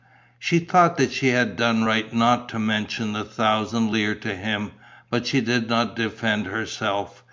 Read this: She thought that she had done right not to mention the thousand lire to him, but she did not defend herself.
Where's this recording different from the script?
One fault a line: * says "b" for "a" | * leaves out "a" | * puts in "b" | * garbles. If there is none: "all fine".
all fine